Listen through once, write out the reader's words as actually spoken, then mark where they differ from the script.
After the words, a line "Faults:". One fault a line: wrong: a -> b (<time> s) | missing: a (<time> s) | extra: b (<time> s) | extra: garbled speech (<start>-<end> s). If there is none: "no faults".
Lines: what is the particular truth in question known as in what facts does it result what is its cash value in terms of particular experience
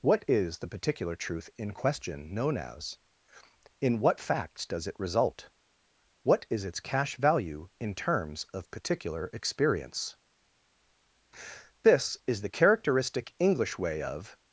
what is the particular truth in question known as in what facts does it result what is its cash value in terms of particular experience this is the characteristic english way of
Faults:
extra: this is the characteristic english way of (11.8 s)